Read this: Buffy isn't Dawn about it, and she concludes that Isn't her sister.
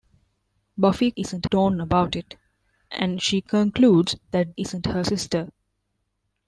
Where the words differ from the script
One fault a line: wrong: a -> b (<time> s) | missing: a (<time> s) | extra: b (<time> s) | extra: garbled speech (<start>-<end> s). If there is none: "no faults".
no faults